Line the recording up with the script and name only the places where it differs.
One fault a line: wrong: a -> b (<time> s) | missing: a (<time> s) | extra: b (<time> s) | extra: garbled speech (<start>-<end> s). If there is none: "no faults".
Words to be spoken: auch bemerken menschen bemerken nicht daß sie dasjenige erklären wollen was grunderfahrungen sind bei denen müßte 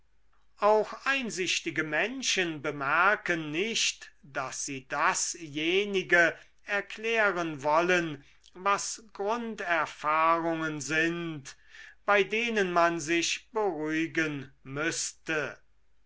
wrong: bemerken -> einsichtige (1.1 s)
extra: man sich beruhigen (12.7 s)